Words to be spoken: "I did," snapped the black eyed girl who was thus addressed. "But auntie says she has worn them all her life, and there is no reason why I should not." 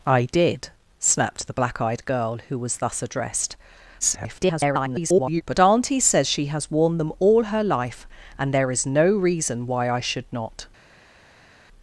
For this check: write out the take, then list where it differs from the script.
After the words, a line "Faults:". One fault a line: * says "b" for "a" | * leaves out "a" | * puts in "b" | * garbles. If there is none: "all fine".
"I did," snapped the black eyed girl who was thus addressed. [garbled] "But auntie says she has worn them all her life, and there is no reason why I should not."
Faults:
* garbles